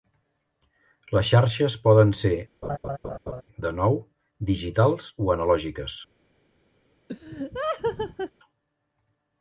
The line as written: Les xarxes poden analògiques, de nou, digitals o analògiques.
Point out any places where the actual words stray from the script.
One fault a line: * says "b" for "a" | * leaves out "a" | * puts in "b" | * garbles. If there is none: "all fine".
* says "ser" for "analògiques"